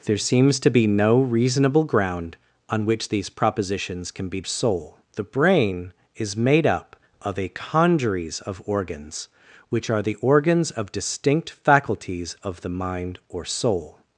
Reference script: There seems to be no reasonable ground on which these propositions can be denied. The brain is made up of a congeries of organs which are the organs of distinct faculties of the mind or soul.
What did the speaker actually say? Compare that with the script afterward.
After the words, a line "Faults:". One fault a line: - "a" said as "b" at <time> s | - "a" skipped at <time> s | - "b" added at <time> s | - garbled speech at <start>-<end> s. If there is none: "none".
There seems to be no reasonable ground on which these propositions can be soul. The brain is made up of a congeries of organs which are the organs of distinct faculties of the mind or soul.
Faults:
- "denied" said as "soul" at 4.4 s